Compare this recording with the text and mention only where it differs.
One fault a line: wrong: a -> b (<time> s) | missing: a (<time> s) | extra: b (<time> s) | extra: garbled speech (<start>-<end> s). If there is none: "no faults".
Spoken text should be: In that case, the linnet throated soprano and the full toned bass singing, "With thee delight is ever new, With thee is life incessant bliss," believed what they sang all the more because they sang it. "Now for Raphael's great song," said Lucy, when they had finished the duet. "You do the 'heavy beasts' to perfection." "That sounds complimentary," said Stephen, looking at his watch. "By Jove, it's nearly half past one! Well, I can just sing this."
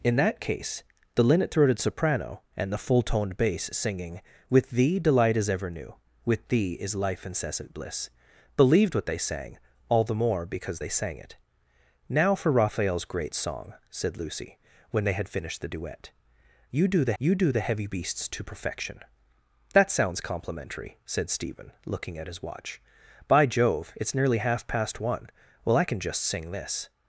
extra: you do the (17.2 s)